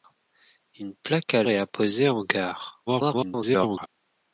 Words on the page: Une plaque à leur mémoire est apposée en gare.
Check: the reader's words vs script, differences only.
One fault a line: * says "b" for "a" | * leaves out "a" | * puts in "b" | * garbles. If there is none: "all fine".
* leaves out "leur mémoire"
* garbles